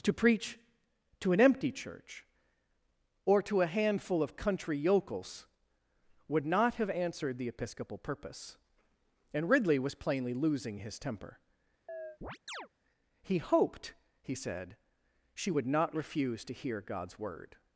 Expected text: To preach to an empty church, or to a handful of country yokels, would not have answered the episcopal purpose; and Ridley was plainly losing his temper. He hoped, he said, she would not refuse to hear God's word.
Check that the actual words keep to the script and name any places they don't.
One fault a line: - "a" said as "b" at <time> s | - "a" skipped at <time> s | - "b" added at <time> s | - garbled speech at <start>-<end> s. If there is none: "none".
none